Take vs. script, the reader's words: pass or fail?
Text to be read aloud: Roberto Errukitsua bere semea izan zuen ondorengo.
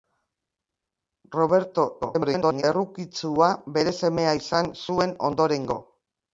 fail